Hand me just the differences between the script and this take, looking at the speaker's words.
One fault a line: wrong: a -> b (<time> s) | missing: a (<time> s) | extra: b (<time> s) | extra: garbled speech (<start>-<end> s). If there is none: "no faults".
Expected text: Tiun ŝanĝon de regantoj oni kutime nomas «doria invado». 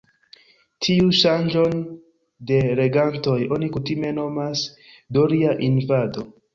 no faults